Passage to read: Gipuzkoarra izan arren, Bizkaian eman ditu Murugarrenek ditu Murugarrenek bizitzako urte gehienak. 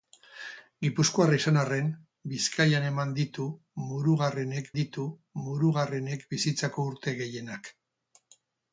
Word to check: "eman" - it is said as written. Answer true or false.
true